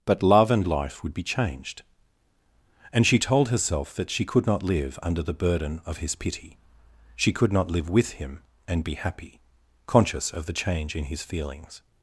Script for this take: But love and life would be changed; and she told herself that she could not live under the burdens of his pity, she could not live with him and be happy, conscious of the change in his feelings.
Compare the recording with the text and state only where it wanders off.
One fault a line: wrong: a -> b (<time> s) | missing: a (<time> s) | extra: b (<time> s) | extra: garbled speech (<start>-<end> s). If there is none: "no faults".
wrong: burdens -> burden (5.3 s)